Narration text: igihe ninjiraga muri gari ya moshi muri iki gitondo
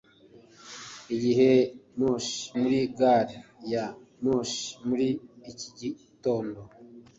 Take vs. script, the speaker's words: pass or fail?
fail